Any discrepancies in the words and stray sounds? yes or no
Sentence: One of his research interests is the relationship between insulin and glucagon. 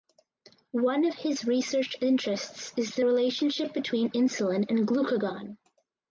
no